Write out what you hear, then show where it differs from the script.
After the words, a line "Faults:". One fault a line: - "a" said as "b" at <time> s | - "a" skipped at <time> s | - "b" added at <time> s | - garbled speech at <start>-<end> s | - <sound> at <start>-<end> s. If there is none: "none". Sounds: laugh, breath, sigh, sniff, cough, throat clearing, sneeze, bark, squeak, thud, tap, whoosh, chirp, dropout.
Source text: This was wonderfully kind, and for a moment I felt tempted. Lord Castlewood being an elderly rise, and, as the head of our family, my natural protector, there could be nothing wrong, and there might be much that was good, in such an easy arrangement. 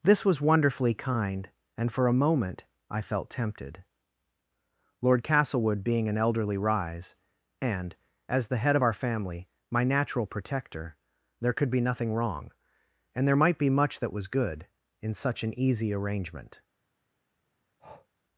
This was wonderfully kind, and for a moment I felt tempted. Lord Castlewood being an elderly rise, and, as the head of our family, my natural protector, there could be nothing wrong, and there might be much that was good, in such an easy arrangement.
Faults:
- breath at 17.8-18.1 s